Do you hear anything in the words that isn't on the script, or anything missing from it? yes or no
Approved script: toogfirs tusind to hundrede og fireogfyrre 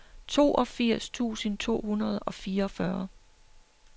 no